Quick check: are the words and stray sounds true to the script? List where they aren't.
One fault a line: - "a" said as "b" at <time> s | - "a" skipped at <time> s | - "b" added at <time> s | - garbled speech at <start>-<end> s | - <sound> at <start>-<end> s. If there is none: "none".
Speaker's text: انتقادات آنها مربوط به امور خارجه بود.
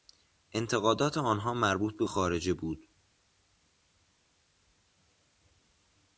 - "امور" skipped at 2.0 s